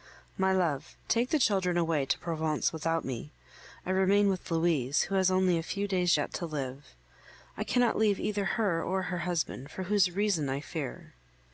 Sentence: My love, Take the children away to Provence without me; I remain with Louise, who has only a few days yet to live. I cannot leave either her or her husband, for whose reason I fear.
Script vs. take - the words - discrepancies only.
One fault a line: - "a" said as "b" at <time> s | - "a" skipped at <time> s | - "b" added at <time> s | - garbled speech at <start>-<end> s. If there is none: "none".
none